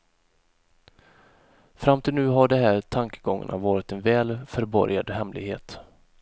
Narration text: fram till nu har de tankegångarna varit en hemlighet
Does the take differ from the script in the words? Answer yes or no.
yes